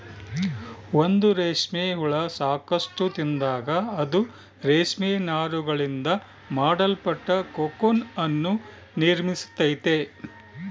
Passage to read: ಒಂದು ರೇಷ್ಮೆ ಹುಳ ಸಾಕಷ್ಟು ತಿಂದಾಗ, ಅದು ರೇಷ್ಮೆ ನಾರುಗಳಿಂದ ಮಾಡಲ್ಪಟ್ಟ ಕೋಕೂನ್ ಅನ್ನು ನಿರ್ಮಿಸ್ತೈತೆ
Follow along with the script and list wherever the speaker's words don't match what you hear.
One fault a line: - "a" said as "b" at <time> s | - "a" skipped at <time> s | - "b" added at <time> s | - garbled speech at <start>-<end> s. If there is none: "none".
none